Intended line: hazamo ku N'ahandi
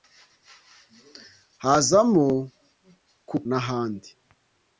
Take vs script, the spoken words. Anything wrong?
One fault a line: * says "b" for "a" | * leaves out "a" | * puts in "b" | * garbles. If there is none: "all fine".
all fine